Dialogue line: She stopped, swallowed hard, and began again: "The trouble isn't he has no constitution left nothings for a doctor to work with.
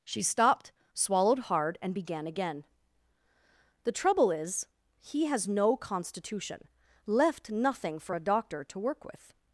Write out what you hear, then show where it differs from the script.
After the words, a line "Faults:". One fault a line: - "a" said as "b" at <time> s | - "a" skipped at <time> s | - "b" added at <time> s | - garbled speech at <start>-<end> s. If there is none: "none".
She stopped, swallowed hard, and began again: "The trouble is he has no constitution left nothing for a doctor to work with.
Faults:
- "isn't" said as "is" at 4.3 s
- "nothings" said as "nothing" at 7.5 s